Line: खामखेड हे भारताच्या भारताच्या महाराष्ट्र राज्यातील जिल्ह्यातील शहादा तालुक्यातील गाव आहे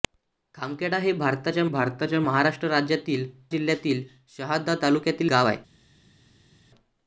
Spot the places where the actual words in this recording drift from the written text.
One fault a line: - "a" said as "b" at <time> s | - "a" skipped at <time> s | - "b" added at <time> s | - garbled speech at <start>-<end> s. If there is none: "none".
none